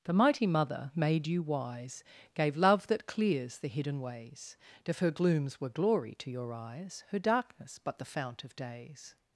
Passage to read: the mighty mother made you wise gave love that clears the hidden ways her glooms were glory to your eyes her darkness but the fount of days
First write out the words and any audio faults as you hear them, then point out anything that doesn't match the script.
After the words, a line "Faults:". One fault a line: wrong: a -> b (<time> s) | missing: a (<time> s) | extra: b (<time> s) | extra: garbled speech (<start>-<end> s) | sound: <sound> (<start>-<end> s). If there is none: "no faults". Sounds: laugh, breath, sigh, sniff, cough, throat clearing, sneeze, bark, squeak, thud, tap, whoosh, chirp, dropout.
the mighty mother made you wise gave love that clears the hidden ways if her glooms were glory to your eyes her darkness but the fount of days
Faults:
extra: if (4.8 s)